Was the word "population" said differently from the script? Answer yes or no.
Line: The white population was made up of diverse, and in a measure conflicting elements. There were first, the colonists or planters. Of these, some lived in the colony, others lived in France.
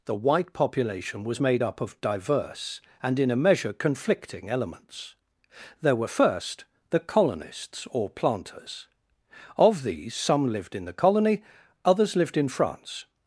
no